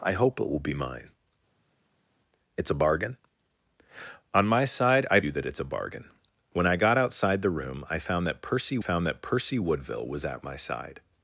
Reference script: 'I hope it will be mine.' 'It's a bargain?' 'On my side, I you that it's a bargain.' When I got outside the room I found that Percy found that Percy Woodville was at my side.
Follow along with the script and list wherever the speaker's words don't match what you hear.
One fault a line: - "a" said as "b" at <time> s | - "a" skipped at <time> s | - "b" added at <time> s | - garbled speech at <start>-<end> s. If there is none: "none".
none